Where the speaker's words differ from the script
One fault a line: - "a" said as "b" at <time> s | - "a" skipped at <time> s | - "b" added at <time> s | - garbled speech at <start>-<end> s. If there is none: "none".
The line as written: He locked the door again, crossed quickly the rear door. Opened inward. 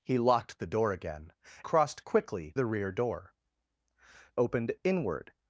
none